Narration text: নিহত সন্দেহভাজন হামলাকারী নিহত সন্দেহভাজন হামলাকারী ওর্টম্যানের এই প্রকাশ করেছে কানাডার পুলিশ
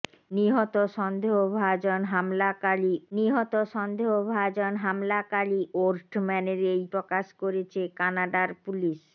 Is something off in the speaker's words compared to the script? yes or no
no